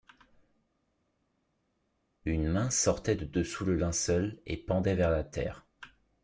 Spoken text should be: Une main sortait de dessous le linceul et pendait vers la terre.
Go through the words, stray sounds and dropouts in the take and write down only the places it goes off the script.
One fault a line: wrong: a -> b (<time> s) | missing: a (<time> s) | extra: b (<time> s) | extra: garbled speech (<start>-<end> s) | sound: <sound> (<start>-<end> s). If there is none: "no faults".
no faults